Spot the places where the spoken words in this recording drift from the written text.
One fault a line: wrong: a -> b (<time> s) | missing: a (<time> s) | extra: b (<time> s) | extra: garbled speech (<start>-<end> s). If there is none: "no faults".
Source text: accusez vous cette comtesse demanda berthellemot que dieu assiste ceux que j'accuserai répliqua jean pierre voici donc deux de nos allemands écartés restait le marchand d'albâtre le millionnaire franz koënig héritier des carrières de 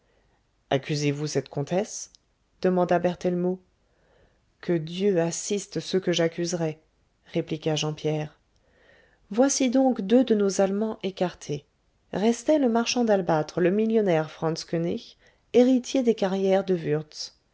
no faults